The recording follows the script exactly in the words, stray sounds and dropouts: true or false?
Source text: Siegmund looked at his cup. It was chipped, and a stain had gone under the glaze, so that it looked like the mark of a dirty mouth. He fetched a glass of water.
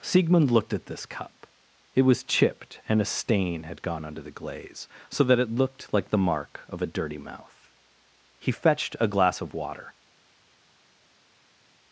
false